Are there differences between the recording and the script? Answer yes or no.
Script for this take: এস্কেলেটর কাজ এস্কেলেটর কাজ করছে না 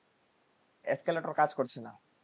yes